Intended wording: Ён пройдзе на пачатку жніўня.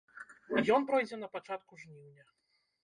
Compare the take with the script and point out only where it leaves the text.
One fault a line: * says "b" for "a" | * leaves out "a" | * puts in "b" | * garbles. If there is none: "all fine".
all fine